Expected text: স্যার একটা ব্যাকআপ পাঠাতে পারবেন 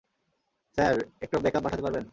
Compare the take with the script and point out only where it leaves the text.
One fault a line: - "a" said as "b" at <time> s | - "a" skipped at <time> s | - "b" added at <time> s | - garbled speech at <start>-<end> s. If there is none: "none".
none